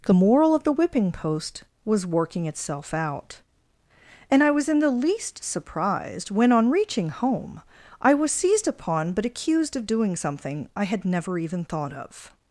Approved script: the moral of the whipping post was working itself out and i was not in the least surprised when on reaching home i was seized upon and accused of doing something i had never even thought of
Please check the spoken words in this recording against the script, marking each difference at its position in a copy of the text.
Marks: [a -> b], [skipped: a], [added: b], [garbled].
the moral of the whipping post was working itself out and i was [skipped: not] in the least surprised when on reaching home i was seized upon [and -> but] accused of doing something i had never even thought of